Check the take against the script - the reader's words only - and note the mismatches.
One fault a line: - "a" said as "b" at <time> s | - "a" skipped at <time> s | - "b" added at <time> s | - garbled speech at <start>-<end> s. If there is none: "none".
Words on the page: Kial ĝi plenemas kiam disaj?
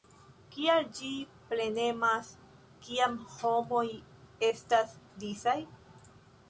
- "homoj estas" added at 3.4 s